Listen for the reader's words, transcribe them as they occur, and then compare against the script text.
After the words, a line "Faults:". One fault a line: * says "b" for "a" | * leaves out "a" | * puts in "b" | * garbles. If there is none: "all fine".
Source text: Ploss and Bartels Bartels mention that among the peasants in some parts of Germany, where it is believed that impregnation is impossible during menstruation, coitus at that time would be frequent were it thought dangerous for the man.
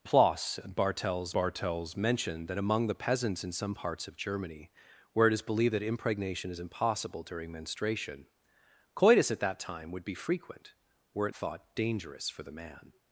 Ploss and Bartels Bartels mention that among the peasants in some parts of Germany, where it is believed that impregnation is impossible during menstruation, coitus at that time would be frequent were it thought dangerous for the man.
Faults:
all fine